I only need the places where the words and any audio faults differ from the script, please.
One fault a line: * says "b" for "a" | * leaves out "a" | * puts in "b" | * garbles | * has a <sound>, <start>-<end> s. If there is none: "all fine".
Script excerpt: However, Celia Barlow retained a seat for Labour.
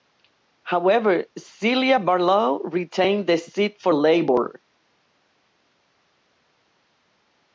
* says "the" for "a"